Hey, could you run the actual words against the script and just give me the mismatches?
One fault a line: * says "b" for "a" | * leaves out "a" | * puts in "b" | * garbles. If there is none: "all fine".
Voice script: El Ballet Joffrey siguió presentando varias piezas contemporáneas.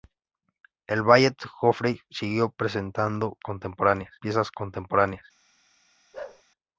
* says "contemporáneas" for "varias"